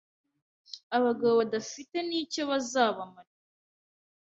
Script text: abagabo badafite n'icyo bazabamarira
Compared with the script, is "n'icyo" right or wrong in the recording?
right